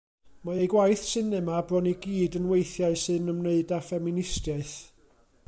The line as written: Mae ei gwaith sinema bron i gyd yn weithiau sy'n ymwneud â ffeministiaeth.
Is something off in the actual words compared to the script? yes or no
no